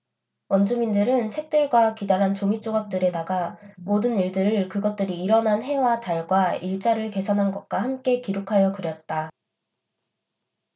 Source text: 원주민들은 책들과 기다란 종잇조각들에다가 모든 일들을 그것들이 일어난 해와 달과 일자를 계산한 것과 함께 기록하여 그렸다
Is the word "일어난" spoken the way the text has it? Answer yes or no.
yes